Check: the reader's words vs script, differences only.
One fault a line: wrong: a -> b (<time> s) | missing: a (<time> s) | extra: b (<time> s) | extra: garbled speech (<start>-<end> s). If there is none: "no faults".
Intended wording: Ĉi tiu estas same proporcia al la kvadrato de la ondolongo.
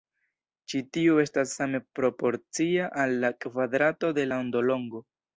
no faults